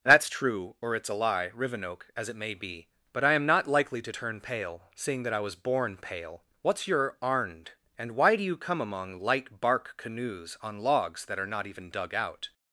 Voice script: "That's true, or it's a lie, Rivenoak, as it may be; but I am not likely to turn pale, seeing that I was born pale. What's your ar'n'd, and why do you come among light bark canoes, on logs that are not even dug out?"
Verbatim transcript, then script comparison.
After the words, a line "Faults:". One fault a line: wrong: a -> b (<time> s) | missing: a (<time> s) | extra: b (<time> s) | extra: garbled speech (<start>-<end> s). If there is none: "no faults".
"That's true, or it's a lie, Rivenoak, as it may be; but I am not likely to turn pale, seeing that I was born pale. What's your ar'n'd, and why do you come among light bark canoes, on logs that are not even dug out?"
Faults:
no faults